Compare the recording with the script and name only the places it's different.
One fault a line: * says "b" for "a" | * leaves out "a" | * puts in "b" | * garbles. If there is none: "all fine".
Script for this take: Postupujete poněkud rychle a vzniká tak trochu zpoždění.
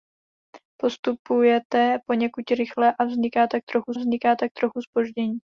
* puts in "vzniká tak trochu"